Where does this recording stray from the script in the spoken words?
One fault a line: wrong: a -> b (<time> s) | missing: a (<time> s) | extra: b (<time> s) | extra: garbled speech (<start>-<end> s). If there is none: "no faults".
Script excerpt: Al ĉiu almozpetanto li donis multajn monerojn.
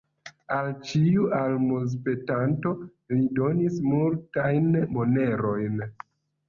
no faults